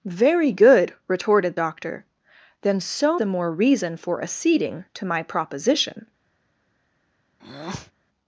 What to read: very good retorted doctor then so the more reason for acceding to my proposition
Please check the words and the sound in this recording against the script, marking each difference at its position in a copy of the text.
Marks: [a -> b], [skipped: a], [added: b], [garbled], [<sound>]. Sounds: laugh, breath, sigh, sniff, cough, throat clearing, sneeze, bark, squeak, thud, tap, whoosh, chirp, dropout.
very good retorted doctor then so the more reason for acceding to my proposition [breath]